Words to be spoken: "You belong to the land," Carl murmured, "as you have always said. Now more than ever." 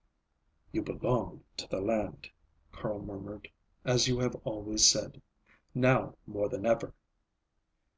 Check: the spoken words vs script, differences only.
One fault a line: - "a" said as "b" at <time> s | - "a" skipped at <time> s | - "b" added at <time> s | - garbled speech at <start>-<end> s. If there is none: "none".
none